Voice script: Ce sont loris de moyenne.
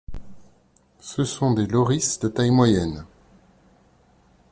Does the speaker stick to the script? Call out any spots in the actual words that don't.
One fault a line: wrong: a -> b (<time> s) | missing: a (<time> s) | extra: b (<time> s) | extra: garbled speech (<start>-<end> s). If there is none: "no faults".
extra: des (1.5 s)
extra: taille (2.3 s)